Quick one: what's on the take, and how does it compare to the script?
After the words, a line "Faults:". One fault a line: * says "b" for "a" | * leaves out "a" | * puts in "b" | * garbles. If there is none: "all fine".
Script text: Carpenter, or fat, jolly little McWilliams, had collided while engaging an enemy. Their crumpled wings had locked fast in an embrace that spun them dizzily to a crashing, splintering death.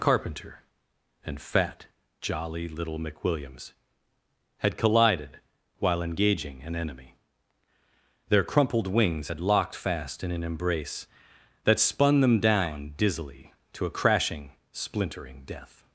Carpenter, and fat, jolly little McWilliams, had collided while engaging an enemy. Their crumpled wings had locked fast in an embrace that spun them down dizzily to a crashing, splintering death.
Faults:
* says "and" for "or"
* puts in "down"